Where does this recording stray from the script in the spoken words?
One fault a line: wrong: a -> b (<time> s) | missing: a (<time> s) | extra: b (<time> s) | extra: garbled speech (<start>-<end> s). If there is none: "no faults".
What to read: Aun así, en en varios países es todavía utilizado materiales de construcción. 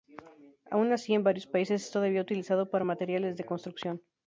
missing: en (1.2 s)
extra: para (2.7 s)